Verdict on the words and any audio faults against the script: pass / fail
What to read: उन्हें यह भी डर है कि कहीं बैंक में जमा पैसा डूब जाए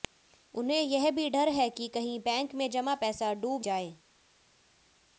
pass